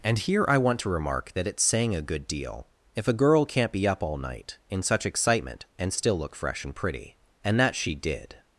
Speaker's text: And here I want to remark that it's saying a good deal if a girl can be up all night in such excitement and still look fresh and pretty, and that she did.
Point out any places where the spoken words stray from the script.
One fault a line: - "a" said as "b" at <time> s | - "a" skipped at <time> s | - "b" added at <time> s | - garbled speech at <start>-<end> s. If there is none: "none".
- "can" said as "can't" at 3.4 s